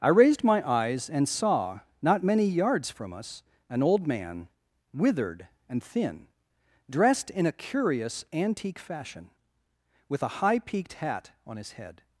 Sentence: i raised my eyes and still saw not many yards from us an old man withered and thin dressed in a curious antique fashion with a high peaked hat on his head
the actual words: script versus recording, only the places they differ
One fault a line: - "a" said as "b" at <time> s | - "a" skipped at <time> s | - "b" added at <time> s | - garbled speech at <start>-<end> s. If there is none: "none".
- "still" skipped at 1.3 s